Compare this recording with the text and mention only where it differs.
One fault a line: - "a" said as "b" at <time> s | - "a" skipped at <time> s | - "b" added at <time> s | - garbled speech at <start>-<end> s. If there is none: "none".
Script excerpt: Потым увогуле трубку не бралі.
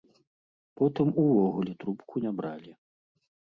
none